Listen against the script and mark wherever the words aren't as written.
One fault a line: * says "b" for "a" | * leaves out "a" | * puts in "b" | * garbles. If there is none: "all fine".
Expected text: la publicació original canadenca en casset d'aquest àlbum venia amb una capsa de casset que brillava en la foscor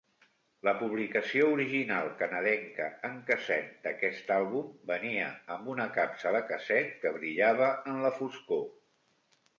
all fine